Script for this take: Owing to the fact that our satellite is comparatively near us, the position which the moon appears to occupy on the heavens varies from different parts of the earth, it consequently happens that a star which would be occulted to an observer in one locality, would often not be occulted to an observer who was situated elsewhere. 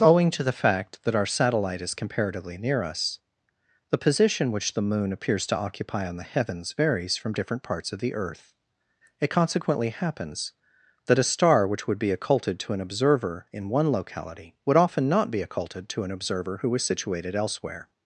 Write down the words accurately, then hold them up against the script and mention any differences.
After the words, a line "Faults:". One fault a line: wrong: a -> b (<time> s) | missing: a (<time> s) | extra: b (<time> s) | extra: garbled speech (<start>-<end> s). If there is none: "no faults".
Owing to the fact that our satellite is comparatively near us, the position which the moon appears to occupy on the heavens varies from different parts of the earth, it consequently happens that a star which would be occulted to an observer in one locality, would often not be occulted to an observer who was situated elsewhere.
Faults:
no faults